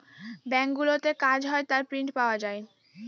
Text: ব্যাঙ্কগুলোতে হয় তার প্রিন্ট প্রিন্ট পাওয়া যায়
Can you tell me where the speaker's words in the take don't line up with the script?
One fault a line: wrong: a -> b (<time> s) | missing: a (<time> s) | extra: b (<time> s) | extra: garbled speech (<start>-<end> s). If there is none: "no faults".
extra: কাজ (1.2 s)
missing: প্রিন্ট (2.1 s)